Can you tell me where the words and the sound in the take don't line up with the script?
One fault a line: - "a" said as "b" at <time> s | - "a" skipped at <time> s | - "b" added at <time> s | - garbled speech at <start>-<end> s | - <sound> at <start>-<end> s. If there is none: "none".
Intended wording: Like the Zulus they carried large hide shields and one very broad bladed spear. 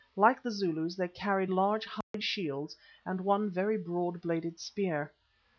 - dropout at 2.0-2.1 s